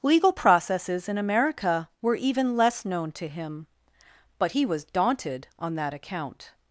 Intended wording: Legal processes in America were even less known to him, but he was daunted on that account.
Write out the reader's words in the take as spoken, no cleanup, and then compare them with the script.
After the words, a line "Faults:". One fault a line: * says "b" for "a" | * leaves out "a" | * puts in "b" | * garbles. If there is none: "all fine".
Legal processes in America were even less known to him, but he was daunted on that account.
Faults:
all fine